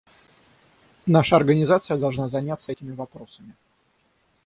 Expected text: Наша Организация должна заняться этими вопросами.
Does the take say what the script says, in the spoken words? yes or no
yes